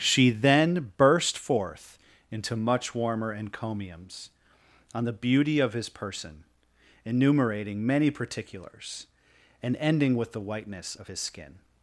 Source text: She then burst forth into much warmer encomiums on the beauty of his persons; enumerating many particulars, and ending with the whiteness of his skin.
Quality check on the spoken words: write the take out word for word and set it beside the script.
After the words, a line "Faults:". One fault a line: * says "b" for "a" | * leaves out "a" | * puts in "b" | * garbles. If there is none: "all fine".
She then burst forth into much warmer encomiums on the beauty of his person; enumerating many particulars, and ending with the whiteness of his skin.
Faults:
* says "person" for "persons"